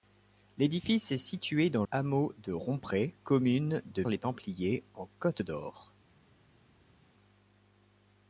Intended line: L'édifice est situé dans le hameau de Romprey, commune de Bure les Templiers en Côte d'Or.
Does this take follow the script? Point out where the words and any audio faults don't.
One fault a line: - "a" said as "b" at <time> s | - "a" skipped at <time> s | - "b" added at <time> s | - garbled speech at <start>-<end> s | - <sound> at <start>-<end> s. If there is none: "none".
- "le" skipped at 1.9 s
- "Bure" skipped at 4.0 s